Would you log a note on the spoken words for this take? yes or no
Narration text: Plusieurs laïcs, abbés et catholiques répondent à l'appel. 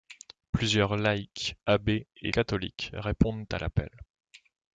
no